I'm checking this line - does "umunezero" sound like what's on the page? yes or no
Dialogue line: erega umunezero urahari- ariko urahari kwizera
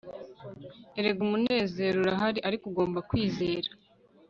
yes